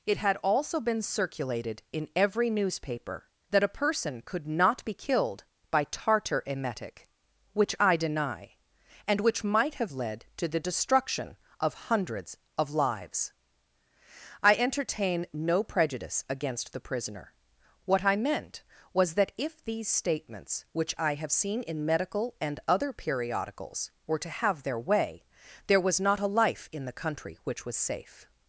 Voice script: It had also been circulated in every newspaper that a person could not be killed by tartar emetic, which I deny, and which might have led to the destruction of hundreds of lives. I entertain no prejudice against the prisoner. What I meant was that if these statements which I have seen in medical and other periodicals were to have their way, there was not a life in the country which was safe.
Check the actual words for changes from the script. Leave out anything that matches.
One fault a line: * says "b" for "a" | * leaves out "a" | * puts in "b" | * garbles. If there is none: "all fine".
all fine